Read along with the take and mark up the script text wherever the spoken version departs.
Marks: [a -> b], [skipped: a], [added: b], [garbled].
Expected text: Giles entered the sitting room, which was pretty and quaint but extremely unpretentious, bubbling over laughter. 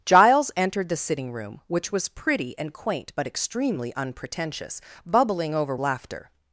Giles entered the sitting room, which was pretty and quaint but extremely unpretentious, bubbling over laughter.